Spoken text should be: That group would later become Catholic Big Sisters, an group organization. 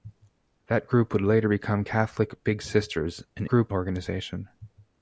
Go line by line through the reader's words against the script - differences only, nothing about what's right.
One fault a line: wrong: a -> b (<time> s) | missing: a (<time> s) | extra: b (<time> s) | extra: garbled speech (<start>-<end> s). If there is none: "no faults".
no faults